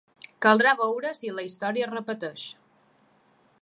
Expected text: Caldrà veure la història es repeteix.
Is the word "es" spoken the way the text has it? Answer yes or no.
yes